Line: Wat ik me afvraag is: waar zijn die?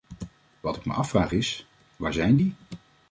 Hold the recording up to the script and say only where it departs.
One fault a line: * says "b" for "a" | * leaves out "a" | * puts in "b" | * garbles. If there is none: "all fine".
all fine